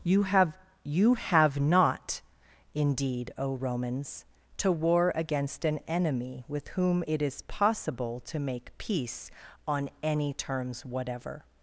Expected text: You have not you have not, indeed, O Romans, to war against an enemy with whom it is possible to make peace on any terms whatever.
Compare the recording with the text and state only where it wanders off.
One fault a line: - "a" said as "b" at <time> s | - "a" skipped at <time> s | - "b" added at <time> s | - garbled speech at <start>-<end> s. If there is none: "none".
- "not" skipped at 0.5 s